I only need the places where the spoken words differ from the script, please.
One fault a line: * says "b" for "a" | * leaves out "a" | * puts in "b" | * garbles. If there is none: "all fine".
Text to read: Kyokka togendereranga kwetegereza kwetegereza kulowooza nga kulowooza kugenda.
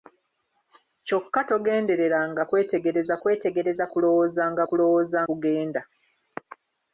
all fine